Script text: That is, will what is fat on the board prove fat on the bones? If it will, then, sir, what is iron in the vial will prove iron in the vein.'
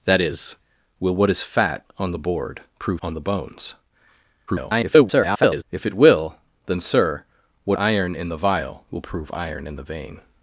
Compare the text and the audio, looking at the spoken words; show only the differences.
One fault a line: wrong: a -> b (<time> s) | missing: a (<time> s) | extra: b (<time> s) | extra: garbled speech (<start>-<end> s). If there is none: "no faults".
missing: fat (3.0 s)
extra: garbled speech (4.5-5.6 s)
missing: is (7.8 s)